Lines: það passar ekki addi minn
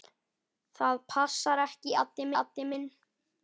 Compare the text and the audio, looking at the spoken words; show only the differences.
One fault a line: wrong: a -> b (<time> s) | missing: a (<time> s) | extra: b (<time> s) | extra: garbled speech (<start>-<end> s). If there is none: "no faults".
extra: addi (2.4 s)